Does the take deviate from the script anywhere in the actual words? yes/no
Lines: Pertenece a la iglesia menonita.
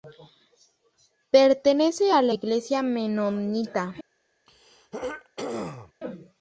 no